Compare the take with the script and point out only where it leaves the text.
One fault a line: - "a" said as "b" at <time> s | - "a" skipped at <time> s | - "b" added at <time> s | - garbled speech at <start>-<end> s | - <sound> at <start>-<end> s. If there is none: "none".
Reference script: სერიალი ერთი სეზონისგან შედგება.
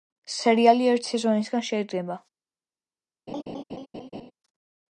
- laugh at 3.3-4.3 s